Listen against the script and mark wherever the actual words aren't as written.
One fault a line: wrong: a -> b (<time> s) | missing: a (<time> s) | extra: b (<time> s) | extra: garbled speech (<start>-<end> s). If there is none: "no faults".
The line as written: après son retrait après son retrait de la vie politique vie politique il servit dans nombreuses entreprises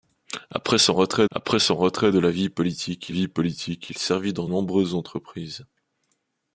no faults